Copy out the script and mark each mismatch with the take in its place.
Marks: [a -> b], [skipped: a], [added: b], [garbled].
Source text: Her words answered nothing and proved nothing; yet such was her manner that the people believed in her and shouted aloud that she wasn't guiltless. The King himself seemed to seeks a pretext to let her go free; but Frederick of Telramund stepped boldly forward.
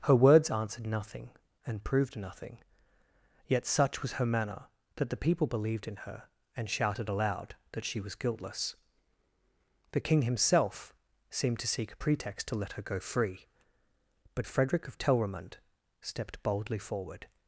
Her words answered nothing and proved nothing; yet such was her manner that the people believed in her and shouted aloud that she [wasn't -> was] guiltless. The King himself seemed to [seeks -> seek] a pretext to let her go free; but Frederick of Telramund stepped boldly forward.